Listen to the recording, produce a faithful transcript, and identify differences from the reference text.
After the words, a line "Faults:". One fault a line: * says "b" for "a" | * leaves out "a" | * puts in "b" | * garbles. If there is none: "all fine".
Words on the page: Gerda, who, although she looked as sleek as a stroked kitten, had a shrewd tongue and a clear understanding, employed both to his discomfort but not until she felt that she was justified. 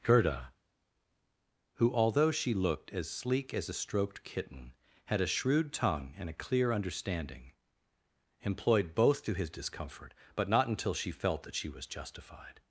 Gerda, who, although she looked as sleek as a stroked kitten, had a shrewd tongue and a clear understanding, employed both to his discomfort but not until she felt that she was justified.
Faults:
all fine